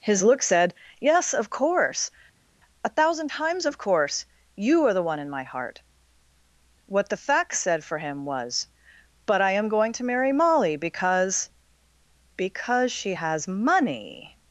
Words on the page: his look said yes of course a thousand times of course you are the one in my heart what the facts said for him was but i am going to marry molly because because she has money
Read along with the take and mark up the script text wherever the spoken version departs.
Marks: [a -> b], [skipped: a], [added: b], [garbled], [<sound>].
his look said yes of course a thousand times of course you are the one in my heart what the facts said for him was but i am going to marry molly because because she has money